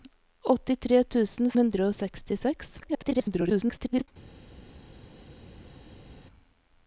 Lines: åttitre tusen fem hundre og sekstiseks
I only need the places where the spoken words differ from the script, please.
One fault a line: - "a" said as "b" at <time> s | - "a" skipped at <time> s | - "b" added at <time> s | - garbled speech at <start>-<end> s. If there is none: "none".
- "fem" skipped at 1.5 s
- garbled speech at 2.8-4.1 s